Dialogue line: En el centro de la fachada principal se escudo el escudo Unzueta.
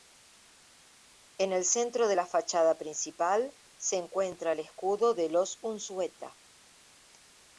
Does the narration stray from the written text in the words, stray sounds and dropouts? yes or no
yes